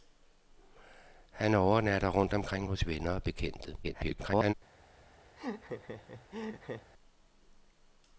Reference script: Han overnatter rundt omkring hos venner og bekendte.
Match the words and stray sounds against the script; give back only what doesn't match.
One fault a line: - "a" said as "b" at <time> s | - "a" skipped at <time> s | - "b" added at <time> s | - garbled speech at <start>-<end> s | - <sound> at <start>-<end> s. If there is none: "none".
- garbled speech at 3.8-4.5 s
- laugh at 5.4-6.9 s